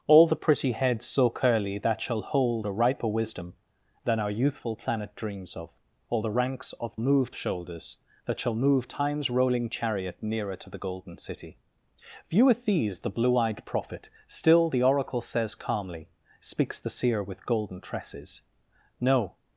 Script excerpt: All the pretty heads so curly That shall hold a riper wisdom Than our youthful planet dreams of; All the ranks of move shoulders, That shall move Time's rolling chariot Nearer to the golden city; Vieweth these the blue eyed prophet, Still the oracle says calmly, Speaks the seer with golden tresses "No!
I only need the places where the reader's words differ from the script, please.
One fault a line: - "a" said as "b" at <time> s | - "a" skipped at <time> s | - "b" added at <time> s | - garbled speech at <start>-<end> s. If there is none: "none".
none